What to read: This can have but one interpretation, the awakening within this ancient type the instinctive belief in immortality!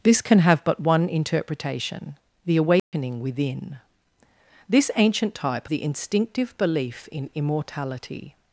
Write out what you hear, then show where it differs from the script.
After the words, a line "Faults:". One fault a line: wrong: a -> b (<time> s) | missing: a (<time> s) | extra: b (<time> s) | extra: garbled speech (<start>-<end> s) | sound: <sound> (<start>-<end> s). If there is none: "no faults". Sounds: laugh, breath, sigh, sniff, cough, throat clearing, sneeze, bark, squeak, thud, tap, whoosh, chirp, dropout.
This can have but one interpretation, the awakening within this ancient type the instinctive belief in immortality!
Faults:
sound: dropout (2.8-2.9 s)